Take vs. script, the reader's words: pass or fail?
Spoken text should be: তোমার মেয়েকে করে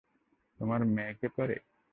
pass